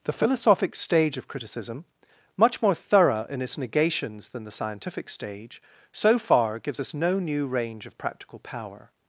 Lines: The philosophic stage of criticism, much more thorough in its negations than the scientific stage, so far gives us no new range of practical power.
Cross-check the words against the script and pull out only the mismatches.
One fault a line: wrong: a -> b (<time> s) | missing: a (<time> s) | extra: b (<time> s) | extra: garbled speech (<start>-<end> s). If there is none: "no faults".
no faults